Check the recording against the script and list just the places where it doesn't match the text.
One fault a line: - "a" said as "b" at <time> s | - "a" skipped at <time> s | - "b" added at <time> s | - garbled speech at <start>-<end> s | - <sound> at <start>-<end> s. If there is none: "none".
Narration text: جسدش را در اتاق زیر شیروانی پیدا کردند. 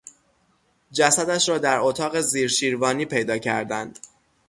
none